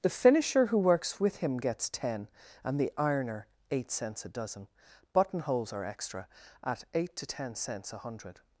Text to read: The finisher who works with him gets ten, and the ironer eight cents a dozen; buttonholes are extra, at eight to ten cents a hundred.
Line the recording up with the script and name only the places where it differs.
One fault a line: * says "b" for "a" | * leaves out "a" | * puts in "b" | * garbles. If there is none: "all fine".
all fine